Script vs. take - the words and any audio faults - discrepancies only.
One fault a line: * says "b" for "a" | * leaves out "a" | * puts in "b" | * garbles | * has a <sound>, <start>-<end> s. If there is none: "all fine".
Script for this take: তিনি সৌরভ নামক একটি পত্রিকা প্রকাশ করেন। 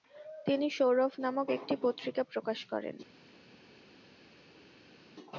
all fine